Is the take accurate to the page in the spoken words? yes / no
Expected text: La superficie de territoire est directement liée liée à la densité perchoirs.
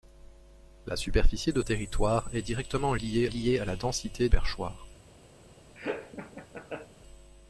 yes